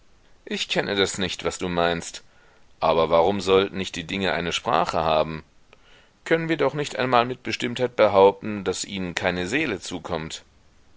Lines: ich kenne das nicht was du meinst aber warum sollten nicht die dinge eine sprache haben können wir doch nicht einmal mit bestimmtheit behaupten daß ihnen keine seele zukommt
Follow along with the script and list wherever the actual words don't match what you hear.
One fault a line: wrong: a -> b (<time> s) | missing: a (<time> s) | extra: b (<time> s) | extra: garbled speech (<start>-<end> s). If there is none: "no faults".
no faults